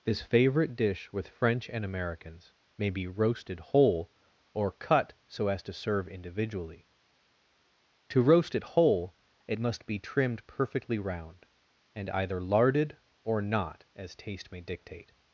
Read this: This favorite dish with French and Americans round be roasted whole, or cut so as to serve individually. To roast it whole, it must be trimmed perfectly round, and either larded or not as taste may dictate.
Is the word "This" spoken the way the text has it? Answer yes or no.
yes